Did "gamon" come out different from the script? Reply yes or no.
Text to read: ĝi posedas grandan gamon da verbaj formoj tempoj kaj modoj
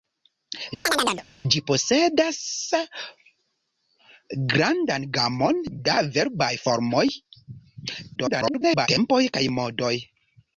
no